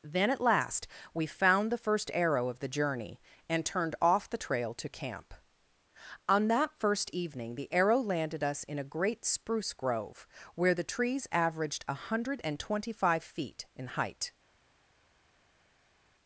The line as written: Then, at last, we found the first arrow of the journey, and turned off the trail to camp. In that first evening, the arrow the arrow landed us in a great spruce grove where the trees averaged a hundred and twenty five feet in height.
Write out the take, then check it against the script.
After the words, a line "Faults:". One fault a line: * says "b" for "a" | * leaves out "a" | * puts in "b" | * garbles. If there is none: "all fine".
Then, at last, we found the first arrow of the journey, and turned off the trail to camp. On that first evening, the arrow landed us in a great spruce grove where the trees averaged a hundred and twenty five feet in height.
Faults:
* says "On" for "In"
* leaves out "the arrow"